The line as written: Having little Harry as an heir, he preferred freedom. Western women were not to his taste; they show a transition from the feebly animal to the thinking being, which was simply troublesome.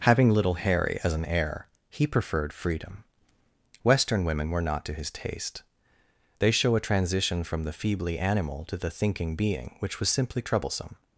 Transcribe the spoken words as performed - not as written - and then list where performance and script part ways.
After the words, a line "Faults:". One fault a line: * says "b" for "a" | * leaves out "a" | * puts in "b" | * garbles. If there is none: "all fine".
Having little Harry as an heir, he preferred freedom. Western women were not to his taste; they show a transition from the feebly animal to the thinking being, which was simply troublesome.
Faults:
all fine